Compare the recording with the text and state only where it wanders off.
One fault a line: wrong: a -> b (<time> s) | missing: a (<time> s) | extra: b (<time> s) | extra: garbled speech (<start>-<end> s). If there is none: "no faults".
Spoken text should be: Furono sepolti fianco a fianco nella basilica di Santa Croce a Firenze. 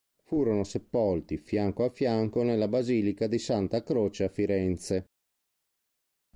no faults